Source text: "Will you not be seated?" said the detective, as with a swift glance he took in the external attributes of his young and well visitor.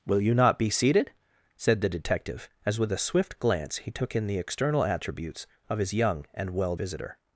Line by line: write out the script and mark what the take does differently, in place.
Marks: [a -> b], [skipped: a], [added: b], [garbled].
"Will you not be seated?" said the detective, as with a swift glance he took in the external attributes of his young and well visitor.